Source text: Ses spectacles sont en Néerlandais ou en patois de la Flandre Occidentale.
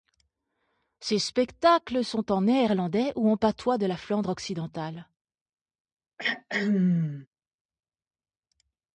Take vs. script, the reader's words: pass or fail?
pass